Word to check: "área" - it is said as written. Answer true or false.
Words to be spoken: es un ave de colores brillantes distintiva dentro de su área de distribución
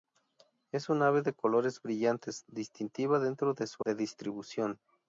false